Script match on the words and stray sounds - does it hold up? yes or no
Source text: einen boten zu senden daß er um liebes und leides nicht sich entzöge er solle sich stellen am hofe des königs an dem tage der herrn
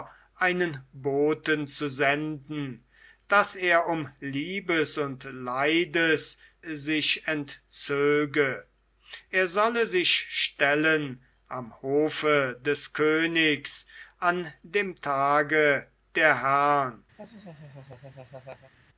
no